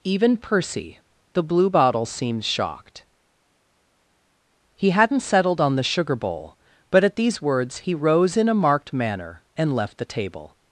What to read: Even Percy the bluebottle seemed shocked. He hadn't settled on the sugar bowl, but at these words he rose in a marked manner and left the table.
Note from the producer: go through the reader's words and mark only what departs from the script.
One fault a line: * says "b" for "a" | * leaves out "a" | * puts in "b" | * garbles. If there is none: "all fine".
all fine